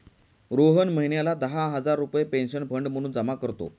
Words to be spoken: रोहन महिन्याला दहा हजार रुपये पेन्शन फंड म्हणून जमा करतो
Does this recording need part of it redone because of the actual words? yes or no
no